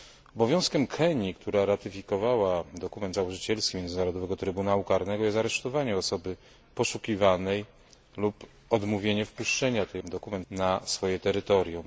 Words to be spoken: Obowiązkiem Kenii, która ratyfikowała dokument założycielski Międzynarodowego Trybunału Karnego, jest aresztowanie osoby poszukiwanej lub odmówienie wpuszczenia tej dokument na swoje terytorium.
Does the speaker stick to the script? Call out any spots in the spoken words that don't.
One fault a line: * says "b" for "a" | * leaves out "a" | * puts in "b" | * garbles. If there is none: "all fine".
all fine